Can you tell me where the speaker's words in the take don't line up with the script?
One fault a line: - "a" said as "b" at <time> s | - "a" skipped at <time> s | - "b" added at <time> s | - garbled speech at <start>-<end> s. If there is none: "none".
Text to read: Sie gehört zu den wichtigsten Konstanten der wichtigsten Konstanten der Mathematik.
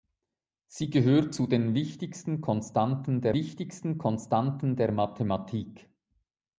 none